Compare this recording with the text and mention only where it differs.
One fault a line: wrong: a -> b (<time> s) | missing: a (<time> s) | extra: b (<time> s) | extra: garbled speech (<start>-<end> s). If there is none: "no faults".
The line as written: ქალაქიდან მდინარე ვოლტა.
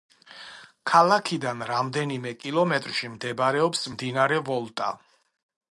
extra: რამდენიმე კილომეტრში მდებარეობს (1.7 s)